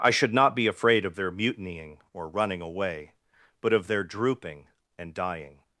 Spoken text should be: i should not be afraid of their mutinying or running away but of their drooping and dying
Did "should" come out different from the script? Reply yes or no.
no